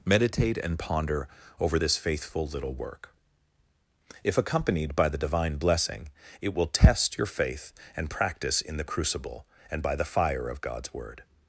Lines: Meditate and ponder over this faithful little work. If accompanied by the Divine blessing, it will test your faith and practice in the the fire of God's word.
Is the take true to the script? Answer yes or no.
no